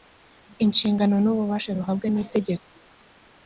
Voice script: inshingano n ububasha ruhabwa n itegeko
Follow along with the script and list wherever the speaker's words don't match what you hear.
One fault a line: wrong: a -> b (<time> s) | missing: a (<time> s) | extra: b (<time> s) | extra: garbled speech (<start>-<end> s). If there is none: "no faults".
no faults